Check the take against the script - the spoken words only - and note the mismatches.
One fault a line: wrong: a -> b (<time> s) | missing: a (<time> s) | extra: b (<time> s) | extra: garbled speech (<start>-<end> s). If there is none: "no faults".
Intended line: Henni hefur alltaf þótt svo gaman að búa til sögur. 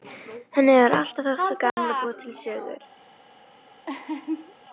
no faults